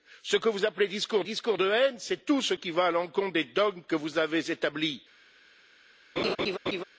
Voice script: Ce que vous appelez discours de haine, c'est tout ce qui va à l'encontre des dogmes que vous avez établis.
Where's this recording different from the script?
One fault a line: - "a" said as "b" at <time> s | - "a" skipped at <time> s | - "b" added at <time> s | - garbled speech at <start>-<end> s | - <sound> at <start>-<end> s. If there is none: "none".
- "discours" added at 1.2 s
- laugh at 6.2-6.8 s